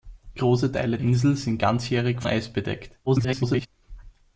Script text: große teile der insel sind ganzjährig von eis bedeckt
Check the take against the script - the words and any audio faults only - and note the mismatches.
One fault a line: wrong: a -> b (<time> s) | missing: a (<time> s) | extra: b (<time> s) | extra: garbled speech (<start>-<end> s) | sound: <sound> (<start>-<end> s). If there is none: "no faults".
missing: der (1.0 s)
missing: von (2.2 s)
extra: garbled speech (3.1-3.7 s)